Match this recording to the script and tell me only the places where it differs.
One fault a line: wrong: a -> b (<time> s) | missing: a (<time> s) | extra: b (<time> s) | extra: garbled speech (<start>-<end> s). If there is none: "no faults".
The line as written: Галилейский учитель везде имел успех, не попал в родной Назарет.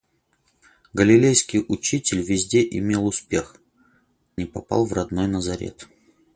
no faults